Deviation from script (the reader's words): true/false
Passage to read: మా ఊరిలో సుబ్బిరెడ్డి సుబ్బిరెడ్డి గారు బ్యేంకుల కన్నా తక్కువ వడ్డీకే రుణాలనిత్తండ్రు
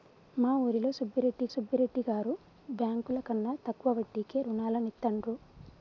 false